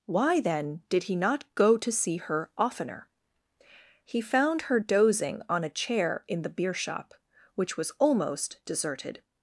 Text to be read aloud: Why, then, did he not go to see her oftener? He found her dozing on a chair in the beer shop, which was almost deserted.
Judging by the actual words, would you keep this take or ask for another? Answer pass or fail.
pass